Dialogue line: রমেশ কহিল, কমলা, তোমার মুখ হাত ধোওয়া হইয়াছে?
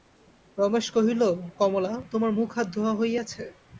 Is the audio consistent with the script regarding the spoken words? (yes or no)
yes